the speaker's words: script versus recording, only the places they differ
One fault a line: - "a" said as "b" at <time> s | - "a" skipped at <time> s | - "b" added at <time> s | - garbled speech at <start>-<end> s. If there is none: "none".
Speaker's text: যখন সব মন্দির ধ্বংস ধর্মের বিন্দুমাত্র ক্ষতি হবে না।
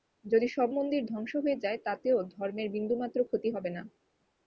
- "যখন" said as "যদি" at 0.2 s
- "হয়ে যায় তাতেও" added at 1.4 s